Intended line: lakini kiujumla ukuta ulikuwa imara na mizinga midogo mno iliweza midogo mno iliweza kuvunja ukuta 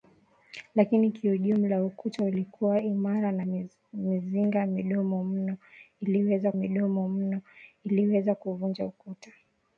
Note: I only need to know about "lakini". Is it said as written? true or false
true